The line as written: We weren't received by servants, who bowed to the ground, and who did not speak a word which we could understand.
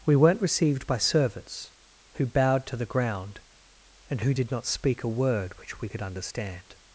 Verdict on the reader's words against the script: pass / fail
pass